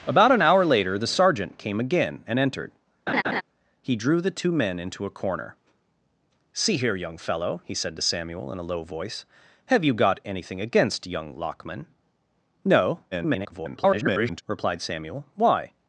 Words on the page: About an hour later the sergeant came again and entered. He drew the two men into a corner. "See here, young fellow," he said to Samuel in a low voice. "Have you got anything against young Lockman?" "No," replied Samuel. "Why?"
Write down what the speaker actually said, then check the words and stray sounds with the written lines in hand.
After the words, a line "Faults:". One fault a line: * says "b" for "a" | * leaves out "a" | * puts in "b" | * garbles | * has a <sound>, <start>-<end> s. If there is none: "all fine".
About an hour later the sergeant came again and entered. He drew the two men into a corner. "See here, young fellow," he said to Samuel in a low voice. "Have you got anything against young Lockman?" "No," [garbled] replied Samuel. "Why?"
Faults:
* has a laugh, 3.1-3.4 s
* garbles